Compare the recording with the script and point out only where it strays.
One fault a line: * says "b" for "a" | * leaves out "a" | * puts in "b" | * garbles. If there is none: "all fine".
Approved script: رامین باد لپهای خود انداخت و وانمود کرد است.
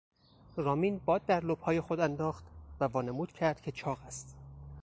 * puts in "در"
* puts in "که چاق"